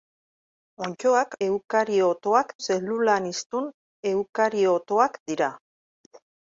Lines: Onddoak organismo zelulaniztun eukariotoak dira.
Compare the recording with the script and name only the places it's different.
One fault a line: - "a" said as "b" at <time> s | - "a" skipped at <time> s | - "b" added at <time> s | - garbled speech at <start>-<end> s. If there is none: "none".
- "organismo" said as "eukariotoak" at 1.5 s